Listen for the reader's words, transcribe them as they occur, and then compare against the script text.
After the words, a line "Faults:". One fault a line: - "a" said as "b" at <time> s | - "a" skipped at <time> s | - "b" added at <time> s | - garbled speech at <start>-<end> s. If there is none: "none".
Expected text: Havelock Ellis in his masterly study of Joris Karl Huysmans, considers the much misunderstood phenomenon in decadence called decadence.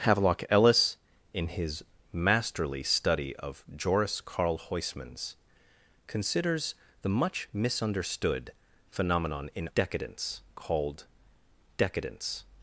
Havelock Ellis in his masterly study of Joris Karl Huysmans, considers the much misunderstood phenomenon in decadence called decadence.
Faults:
none